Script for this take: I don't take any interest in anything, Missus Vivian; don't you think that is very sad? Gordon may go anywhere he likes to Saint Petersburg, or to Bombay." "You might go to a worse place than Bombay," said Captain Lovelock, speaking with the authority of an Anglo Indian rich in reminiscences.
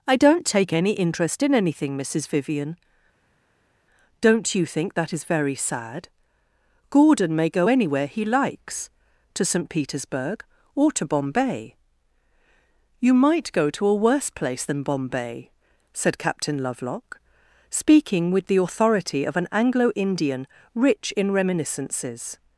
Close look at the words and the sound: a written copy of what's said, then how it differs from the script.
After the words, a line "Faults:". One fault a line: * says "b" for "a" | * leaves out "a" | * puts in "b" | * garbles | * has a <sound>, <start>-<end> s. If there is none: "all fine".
I don't take any interest in anything, Missus Vivian; don't you think that is very sad? Gordon may go anywhere he likes to Saint Petersburg, or to Bombay." "You might go to a worse place than Bombay," said Captain Lovelock, speaking with the authority of an Anglo Indian rich in reminiscences.
Faults:
all fine